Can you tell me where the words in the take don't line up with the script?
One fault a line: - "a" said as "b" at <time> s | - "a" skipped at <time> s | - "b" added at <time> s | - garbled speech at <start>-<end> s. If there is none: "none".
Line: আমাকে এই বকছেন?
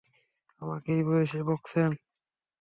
- "বয়সে" added at 1.1 s